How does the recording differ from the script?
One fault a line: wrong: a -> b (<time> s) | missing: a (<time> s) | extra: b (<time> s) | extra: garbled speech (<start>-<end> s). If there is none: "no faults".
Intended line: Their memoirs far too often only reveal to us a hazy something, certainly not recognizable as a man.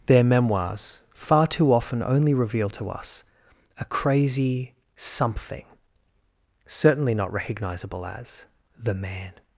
wrong: hazy -> crazy (3.9 s)
wrong: a -> the (8.8 s)